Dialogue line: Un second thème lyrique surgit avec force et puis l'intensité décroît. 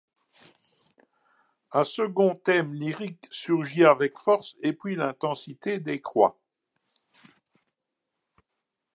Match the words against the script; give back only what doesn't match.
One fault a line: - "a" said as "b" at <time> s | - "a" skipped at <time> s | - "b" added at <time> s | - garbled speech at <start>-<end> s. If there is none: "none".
none